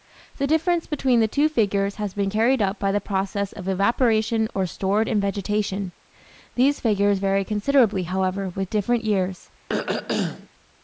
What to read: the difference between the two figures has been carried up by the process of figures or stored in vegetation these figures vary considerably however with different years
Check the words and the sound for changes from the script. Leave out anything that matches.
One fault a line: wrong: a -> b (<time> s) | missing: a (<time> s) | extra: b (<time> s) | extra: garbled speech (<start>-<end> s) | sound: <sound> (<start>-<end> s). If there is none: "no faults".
wrong: figures -> evaporation (3.7 s)
sound: throat clearing (9.7-10.5 s)